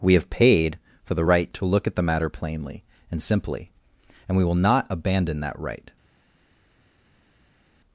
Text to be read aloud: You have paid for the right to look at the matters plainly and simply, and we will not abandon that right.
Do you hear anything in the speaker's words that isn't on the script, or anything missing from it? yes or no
yes